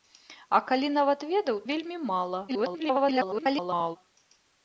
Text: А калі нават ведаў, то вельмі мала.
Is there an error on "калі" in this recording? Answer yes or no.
no